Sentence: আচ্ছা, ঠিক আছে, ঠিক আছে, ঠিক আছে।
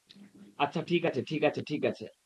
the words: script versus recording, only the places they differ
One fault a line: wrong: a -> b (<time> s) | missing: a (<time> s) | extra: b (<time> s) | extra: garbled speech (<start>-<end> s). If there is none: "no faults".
no faults